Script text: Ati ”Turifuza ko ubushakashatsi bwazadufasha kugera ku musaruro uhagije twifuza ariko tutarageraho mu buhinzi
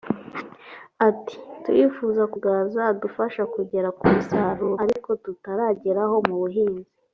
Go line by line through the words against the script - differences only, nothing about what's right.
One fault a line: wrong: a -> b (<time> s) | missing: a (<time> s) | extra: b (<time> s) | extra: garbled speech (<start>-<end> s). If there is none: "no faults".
missing: ubushakashatsi (2.4 s)
missing: uhagije twifuza (4.7 s)